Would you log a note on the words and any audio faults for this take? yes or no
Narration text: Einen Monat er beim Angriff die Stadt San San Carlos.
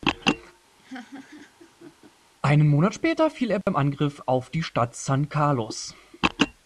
yes